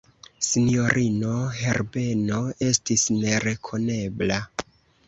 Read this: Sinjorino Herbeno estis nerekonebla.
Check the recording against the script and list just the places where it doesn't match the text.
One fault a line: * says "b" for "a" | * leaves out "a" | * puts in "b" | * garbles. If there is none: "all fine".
all fine